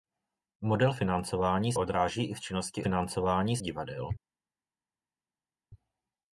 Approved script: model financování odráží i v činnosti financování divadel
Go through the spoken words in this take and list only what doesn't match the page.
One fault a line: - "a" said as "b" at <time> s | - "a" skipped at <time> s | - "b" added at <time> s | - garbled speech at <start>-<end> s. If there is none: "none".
none